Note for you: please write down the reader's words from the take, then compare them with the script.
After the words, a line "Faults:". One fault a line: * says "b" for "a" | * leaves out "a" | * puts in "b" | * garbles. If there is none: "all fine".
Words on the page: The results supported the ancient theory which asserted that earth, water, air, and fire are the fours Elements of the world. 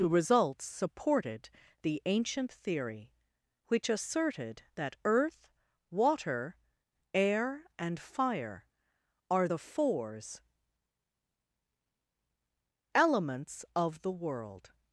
The results supported the ancient theory which asserted that earth, water, air, and fire are the fours Elements of the world.
Faults:
all fine